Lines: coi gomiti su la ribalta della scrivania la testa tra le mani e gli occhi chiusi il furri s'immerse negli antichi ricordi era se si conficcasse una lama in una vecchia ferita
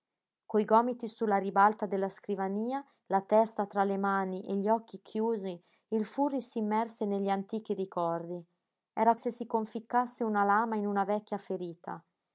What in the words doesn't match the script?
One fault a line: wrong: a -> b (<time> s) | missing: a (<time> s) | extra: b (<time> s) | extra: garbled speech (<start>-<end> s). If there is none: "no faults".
no faults